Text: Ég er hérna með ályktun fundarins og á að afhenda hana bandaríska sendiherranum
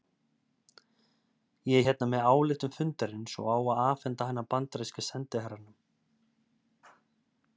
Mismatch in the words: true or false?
false